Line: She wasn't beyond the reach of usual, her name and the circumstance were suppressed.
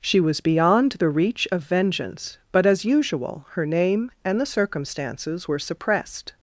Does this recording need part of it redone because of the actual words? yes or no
yes